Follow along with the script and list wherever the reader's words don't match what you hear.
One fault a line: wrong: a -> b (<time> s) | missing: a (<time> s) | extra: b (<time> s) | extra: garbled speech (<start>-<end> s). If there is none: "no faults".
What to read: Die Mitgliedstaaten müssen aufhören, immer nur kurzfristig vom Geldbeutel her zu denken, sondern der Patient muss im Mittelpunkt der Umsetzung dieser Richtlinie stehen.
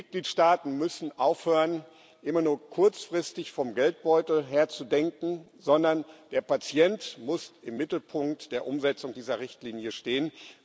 no faults